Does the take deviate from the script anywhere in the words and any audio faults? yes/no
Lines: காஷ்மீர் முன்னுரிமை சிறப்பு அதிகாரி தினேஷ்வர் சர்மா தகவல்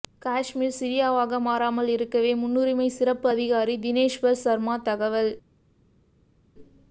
yes